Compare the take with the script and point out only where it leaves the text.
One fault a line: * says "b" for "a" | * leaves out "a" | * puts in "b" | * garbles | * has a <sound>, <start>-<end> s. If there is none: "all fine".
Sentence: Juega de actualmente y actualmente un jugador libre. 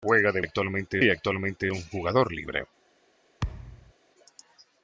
* has a thud, 3.4-3.9 s